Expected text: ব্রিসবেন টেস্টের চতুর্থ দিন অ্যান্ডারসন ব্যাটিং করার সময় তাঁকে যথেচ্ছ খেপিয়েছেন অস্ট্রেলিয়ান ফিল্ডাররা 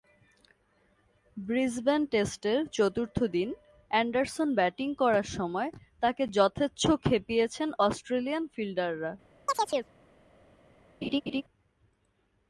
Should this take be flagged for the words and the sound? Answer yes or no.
yes